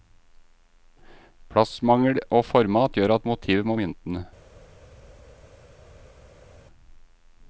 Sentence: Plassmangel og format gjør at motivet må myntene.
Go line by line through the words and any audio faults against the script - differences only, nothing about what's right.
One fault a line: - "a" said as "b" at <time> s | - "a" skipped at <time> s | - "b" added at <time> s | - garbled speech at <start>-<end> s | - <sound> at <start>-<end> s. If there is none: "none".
none